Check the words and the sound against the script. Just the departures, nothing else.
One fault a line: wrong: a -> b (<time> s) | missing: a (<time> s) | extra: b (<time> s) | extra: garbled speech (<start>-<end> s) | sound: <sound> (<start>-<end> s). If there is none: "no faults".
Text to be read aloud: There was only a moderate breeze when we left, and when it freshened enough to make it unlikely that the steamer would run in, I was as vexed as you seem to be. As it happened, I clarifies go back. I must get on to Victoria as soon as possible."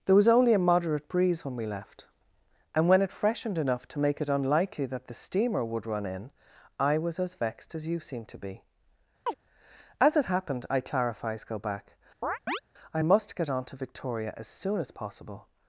sound: chirp (9.3-9.3 s)
sound: chirp (12.2-12.6 s)